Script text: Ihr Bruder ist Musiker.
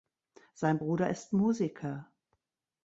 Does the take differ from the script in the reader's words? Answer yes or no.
yes